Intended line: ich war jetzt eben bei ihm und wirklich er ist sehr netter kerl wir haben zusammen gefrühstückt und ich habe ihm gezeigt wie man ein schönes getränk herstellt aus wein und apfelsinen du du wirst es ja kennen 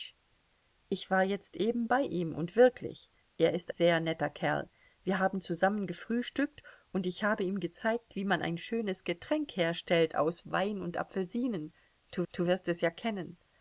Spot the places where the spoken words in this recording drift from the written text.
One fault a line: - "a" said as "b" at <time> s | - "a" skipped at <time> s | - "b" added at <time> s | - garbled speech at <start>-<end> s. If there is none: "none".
none